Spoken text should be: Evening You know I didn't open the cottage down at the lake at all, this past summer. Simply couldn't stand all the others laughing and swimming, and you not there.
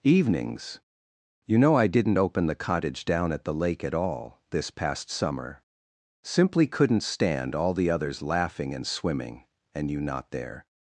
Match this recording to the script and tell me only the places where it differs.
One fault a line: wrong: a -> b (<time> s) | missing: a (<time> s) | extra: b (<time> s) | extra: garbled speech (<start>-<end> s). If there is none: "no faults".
wrong: Evening -> Evenings (0.0 s)